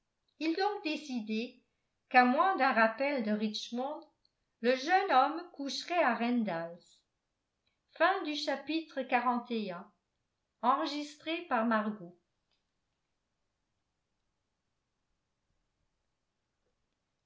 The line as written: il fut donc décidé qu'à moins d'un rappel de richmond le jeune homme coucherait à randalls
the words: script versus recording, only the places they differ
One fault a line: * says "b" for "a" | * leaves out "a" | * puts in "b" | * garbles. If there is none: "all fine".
* leaves out "fut"